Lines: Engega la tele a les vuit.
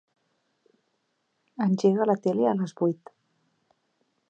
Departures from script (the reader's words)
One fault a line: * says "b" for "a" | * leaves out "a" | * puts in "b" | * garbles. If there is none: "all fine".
all fine